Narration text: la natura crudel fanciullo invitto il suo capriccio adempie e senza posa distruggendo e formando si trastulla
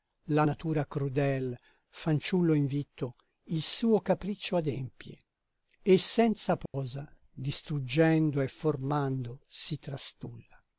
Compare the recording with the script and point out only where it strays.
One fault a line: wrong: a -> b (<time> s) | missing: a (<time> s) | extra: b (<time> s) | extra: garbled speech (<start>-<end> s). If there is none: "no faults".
no faults